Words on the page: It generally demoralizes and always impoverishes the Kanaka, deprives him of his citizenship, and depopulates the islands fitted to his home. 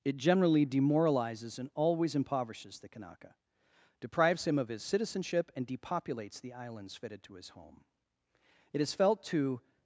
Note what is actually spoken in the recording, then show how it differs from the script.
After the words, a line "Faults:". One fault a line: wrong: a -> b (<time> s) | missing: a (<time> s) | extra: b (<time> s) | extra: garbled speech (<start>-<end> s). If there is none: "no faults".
It generally demoralizes and always impoverishes the Kanaka, deprives him of his citizenship, and depopulates the islands fitted to his home. It is felt to
Faults:
extra: It is felt to (8.7 s)